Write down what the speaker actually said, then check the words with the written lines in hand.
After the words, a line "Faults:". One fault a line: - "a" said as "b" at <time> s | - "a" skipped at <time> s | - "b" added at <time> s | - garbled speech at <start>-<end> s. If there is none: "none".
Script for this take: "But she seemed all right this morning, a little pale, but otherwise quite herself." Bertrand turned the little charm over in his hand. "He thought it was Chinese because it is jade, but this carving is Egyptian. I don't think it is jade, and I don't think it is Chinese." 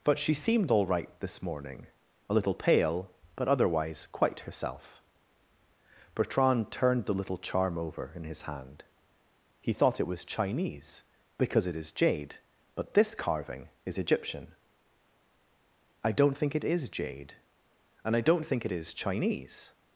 "But she seemed all right this morning, a little pale, but otherwise quite herself." Bertrand turned the little charm over in his hand. "He thought it was Chinese because it is jade, but this carving is Egyptian. I don't think it is jade, and I don't think it is Chinese."
Faults:
none